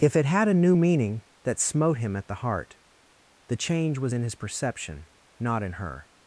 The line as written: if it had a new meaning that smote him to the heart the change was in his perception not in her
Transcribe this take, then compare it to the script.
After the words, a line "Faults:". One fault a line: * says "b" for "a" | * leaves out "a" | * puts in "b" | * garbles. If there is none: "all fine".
if it had a new meaning that smote him at the heart the change was in his perception not in her
Faults:
* says "at" for "to"